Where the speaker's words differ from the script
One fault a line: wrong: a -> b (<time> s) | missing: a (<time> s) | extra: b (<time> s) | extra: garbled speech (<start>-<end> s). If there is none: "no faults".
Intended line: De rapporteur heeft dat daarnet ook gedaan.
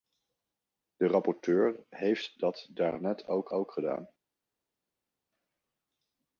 extra: ook (3.5 s)